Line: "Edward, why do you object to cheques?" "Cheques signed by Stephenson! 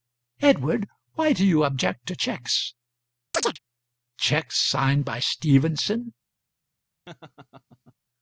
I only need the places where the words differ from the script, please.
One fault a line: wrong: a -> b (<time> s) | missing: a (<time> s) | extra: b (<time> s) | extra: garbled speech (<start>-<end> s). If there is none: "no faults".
no faults